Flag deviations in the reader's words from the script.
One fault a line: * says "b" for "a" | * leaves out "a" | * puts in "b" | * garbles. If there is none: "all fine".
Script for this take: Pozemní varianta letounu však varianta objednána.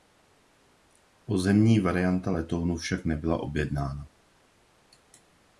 * says "nebyla" for "varianta"